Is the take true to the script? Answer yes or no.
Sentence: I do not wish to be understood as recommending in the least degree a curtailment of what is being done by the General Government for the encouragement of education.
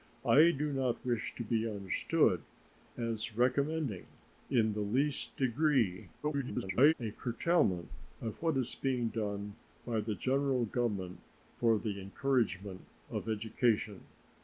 no